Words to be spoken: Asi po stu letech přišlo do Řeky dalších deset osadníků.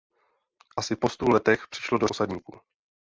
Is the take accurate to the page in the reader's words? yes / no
no